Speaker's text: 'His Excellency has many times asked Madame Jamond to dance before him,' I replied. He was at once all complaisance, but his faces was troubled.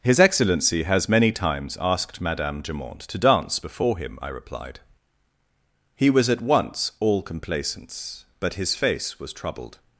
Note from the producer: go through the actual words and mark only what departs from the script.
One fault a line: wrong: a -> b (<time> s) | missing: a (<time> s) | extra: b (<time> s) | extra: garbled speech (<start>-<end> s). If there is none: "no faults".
wrong: faces -> face (8.8 s)